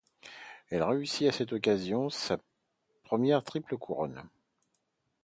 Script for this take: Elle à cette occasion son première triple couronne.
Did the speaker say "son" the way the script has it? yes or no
no